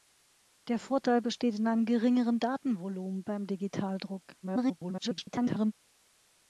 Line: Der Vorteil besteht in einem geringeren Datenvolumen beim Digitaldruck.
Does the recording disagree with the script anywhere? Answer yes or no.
yes